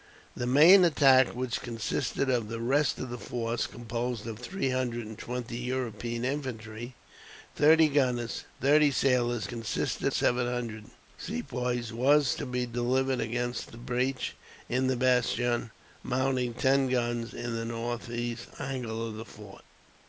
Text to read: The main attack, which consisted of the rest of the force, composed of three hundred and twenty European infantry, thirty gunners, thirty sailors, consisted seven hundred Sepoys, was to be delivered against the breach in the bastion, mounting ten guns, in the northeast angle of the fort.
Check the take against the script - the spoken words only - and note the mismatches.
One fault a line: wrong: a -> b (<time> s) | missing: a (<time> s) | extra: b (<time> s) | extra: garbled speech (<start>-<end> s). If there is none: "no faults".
no faults